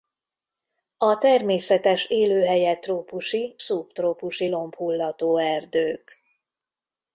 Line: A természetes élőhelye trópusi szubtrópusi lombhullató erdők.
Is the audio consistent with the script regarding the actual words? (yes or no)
yes